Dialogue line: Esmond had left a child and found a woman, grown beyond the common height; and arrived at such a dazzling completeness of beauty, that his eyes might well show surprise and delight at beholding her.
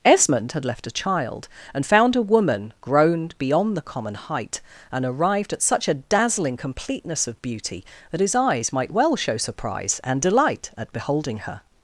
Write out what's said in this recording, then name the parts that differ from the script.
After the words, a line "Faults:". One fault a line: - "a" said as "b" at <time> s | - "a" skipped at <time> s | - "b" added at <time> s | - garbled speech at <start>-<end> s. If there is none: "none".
Esmond had left a child and found a woman, grown beyond the common height; and arrived at such a dazzling completeness of beauty, that his eyes might well show surprise and delight at beholding her.
Faults:
none